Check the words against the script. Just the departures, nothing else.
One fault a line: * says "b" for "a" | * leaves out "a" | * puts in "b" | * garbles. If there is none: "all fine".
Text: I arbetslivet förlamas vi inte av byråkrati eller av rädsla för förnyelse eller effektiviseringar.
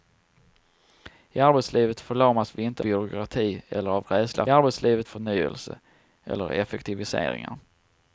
* leaves out "av"
* says "arbetslivet" for "för"